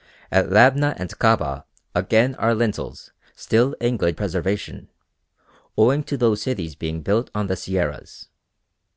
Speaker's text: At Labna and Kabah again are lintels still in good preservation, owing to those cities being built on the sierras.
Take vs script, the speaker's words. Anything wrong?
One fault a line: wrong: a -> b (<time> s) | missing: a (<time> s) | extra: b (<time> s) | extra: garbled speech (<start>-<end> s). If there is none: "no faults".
no faults